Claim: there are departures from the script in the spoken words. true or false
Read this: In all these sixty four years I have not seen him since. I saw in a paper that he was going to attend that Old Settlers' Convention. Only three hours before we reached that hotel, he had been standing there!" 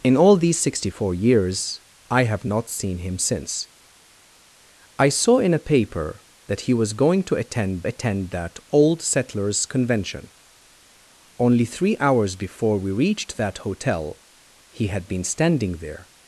true